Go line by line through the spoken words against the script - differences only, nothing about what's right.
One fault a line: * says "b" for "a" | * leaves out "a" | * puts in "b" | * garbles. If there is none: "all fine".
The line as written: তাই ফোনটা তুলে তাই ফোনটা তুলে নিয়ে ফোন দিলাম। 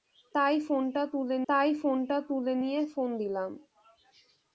all fine